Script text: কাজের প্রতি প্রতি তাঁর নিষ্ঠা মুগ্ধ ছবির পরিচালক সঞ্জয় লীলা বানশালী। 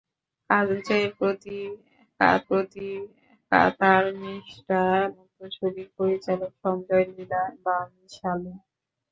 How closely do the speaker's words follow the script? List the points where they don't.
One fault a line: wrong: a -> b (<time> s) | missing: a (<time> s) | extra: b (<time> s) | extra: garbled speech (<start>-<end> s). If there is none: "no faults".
no faults